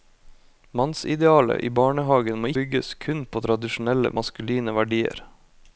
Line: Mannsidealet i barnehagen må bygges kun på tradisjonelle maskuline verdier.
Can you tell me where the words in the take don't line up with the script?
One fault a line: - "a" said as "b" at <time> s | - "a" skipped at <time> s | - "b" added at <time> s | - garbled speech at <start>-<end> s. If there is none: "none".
none